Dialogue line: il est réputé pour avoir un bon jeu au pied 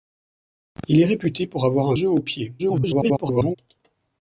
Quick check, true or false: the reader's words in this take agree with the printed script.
false